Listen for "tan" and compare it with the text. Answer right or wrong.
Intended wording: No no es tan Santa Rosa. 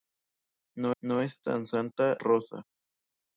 right